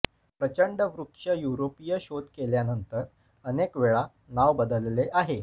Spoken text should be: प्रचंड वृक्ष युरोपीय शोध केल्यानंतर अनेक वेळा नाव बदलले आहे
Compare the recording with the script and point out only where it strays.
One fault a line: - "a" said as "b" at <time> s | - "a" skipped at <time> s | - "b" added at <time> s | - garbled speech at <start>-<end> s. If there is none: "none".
none